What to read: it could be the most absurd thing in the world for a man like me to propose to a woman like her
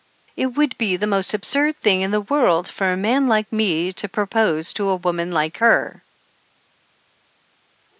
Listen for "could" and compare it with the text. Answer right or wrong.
wrong